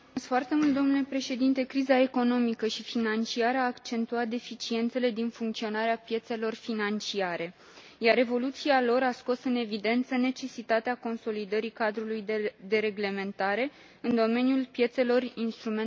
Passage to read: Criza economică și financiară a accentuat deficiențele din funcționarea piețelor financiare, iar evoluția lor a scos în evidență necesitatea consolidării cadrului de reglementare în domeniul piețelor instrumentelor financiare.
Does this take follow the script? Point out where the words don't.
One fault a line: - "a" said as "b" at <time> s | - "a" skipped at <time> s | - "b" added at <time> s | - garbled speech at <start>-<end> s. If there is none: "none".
none